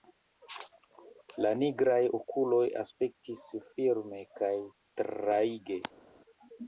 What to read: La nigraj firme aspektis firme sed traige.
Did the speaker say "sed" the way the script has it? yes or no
no